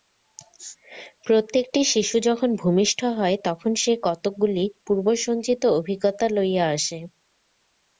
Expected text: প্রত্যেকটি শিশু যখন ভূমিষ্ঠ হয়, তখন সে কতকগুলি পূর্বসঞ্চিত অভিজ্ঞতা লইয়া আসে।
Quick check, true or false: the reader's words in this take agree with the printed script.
true